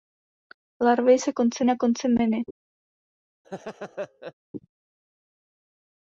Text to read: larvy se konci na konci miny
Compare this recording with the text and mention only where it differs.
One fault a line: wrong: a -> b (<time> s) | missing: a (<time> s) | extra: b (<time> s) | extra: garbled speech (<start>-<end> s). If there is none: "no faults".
no faults